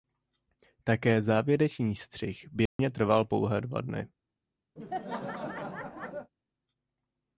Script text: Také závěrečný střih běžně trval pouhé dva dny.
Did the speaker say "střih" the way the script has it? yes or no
yes